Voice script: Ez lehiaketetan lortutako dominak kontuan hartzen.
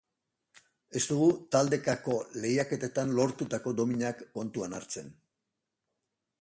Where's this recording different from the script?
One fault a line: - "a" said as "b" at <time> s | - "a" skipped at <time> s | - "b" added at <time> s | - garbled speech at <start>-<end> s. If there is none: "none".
- "dugu taldekako" added at 1.1 s